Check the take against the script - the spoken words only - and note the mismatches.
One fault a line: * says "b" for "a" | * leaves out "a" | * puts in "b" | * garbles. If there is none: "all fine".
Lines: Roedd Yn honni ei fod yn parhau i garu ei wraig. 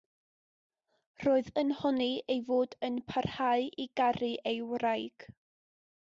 all fine